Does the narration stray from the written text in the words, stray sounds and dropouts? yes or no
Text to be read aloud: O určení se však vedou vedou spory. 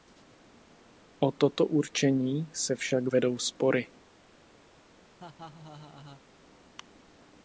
yes